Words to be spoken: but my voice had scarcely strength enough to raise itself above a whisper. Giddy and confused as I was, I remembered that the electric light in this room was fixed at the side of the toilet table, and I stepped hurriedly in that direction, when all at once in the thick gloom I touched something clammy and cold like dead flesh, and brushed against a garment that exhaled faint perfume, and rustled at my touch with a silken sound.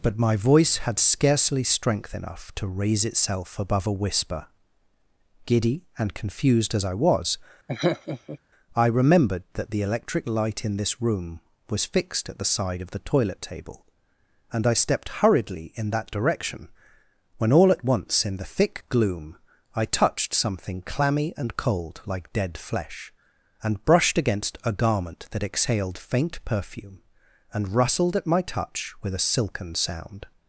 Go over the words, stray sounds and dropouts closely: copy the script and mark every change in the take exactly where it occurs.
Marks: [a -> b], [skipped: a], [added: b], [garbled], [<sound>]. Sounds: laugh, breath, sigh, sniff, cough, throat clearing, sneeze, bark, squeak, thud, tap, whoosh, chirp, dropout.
but my voice had scarcely strength enough to raise itself above a whisper. Giddy and confused as I was, [laugh] I remembered that the electric light in this room was fixed at the side of the toilet table, and I stepped hurriedly in that direction, when all at once in the thick gloom I touched something clammy and cold like dead flesh, and brushed against a garment that exhaled faint perfume, and rustled at my touch with a silken sound.